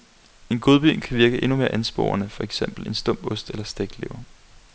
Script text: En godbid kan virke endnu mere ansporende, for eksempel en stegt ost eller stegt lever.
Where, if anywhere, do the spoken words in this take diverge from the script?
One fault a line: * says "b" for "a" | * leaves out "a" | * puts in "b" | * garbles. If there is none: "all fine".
* says "stump" for "stegt"